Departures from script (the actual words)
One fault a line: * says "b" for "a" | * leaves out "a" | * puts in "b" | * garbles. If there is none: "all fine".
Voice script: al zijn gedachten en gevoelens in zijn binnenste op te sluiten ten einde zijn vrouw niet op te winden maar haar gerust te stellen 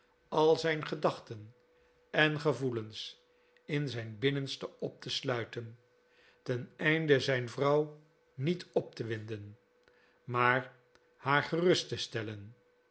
all fine